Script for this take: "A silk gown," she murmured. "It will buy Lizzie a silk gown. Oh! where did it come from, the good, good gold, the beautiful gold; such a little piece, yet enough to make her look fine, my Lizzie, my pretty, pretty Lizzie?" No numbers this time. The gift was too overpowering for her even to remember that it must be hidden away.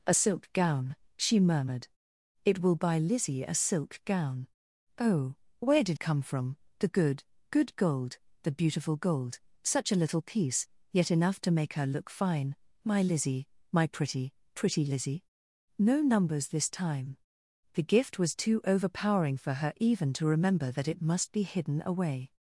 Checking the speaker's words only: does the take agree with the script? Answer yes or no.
no